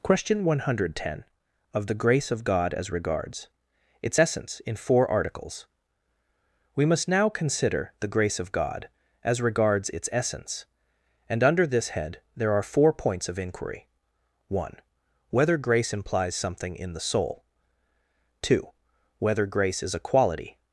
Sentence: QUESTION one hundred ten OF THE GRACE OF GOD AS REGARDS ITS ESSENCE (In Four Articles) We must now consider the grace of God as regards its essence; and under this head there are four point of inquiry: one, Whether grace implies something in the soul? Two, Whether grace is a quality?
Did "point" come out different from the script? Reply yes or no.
yes